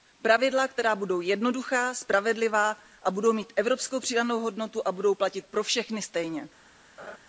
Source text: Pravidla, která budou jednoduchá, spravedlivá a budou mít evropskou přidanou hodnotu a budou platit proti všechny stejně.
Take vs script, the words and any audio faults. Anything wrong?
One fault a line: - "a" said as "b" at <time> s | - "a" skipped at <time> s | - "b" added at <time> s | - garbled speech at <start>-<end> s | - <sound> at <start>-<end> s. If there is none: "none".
- "proti" said as "pro" at 5.5 s
- laugh at 7.0-7.2 s